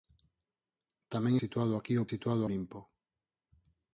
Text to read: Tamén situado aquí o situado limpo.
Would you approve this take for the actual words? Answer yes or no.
yes